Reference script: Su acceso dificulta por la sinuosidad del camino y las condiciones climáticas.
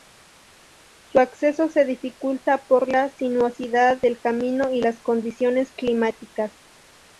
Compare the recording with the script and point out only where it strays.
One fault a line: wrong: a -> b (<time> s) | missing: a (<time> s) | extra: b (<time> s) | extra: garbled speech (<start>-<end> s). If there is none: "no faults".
extra: se (1.7 s)